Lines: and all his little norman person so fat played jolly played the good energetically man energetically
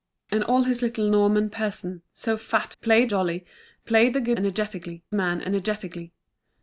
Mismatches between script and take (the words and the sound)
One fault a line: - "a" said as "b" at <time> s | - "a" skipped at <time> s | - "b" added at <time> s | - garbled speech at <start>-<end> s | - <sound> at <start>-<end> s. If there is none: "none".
none